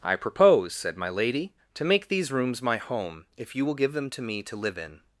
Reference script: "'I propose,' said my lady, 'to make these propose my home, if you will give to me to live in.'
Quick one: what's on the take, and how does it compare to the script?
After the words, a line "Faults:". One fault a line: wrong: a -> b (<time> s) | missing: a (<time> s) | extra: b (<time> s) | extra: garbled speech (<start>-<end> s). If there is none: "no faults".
"'I propose,' said my lady, 'to make these rooms my home, if you will give them to me to live in.'
Faults:
wrong: propose -> rooms (2.3 s)
extra: them (3.9 s)